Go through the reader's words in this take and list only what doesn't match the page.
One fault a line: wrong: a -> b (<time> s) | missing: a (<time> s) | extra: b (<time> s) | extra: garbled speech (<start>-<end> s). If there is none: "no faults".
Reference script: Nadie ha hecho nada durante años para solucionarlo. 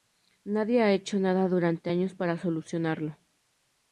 no faults